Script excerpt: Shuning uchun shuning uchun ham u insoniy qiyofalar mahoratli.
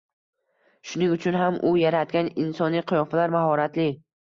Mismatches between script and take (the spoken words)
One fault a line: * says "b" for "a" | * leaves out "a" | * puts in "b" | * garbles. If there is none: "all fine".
* leaves out "shuning uchun"
* puts in "yaratgan"